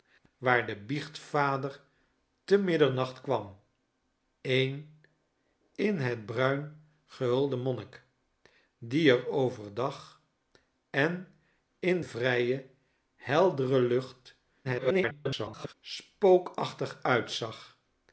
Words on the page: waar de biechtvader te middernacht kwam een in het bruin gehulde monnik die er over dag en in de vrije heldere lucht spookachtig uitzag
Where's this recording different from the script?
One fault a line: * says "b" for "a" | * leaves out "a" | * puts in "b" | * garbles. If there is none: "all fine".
* leaves out "de"
* garbles